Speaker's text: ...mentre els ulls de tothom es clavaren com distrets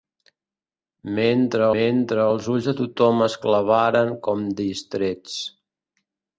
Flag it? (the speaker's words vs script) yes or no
yes